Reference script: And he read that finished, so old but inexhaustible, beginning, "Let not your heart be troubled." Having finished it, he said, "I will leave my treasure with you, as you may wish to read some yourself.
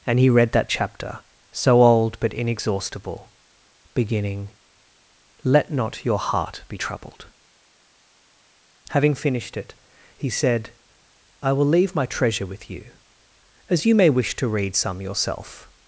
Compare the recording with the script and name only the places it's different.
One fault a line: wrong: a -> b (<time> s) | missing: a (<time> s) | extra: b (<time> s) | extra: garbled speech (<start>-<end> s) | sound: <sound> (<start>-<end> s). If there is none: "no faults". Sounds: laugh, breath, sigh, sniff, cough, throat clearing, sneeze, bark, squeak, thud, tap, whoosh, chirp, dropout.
wrong: finished -> chapter (0.7 s)